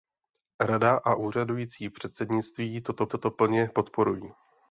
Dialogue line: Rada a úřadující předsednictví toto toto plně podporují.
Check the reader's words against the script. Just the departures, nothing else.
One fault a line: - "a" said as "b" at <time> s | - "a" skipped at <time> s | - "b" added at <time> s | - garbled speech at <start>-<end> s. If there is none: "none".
none